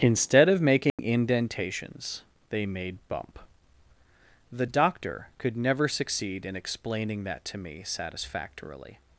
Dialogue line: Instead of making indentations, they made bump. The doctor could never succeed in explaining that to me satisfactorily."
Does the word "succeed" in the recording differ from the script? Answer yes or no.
no